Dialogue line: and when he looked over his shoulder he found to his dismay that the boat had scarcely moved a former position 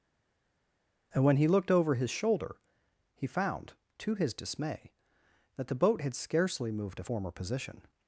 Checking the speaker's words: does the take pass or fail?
pass